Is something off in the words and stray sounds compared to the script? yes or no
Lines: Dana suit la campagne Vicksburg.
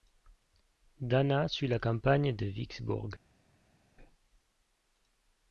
yes